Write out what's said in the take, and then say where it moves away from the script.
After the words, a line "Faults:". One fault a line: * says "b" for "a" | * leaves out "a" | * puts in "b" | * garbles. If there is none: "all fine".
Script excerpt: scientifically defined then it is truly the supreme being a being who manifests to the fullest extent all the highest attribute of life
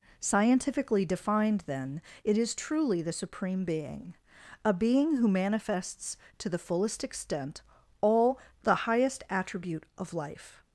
scientifically defined then it is truly the supreme being a being who manifests to the fullest extent all the highest attribute of life
Faults:
all fine